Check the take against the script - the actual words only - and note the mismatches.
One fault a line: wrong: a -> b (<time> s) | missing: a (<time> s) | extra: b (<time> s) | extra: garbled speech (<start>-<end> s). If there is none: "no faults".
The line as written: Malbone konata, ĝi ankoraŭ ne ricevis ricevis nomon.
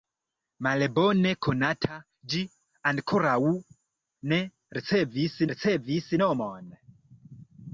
no faults